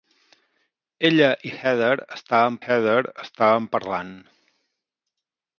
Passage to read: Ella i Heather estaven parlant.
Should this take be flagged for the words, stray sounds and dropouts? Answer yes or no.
yes